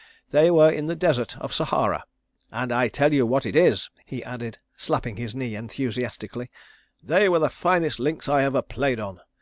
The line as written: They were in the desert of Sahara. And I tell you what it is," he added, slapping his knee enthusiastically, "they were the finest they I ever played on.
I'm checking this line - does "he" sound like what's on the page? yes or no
yes